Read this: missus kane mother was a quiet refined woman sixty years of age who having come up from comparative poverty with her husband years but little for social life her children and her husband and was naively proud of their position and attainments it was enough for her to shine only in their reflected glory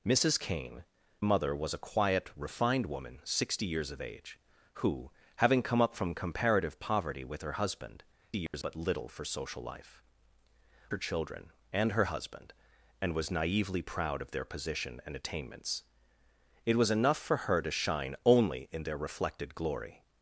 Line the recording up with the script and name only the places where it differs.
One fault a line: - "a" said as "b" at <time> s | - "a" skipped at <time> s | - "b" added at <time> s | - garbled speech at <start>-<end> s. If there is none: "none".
none